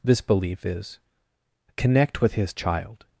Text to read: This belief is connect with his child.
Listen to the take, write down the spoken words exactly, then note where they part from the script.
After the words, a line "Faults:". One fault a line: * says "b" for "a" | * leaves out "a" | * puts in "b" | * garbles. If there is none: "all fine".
This belief is connect with his child.
Faults:
all fine